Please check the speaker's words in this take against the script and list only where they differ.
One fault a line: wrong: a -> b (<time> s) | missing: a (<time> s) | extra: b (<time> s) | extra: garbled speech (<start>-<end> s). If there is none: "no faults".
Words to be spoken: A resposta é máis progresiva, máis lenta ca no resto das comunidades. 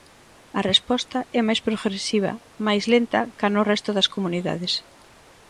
no faults